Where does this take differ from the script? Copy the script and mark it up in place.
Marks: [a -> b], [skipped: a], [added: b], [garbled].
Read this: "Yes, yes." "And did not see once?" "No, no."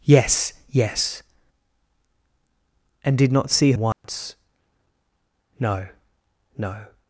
"Yes, yes." "And did not see once?" "No, no."